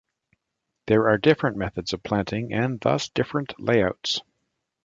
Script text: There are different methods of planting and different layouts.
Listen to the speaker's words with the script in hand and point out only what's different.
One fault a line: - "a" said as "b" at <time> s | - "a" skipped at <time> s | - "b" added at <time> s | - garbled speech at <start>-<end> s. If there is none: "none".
- "thus" added at 2.8 s